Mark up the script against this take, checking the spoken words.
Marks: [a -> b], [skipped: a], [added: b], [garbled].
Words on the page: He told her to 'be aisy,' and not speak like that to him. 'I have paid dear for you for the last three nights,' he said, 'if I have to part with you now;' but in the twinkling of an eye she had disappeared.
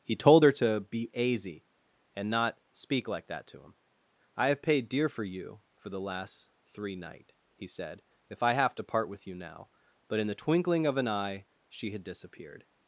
He told her to 'be aisy,' and not speak like that to him. 'I have paid dear for you for the last three [nights,' -> night] he said, 'if I have to part with you now;' but in the twinkling of an eye she had disappeared.